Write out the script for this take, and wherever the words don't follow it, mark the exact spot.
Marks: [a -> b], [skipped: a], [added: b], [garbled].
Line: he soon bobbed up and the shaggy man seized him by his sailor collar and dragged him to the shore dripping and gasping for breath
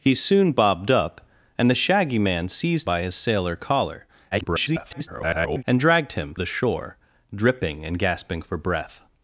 he soon bobbed up and the shaggy man seized [skipped: him] by his sailor collar [garbled] and dragged him [skipped: to] the shore dripping and gasping for breath